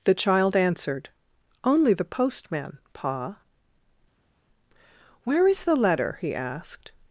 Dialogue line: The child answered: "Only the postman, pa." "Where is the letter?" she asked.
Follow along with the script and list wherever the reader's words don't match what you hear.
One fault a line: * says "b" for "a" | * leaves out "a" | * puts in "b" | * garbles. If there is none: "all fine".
* says "he" for "she"